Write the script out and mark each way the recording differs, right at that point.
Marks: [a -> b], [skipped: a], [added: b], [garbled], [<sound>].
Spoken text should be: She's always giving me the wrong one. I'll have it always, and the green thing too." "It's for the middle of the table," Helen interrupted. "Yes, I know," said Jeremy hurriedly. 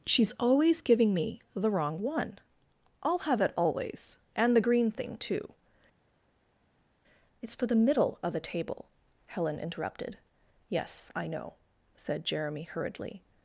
She's always giving me the wrong one. I'll have it always, and the green thing too." "It's for the middle of the table," Helen interrupted. "Yes, I know," said Jeremy hurriedly.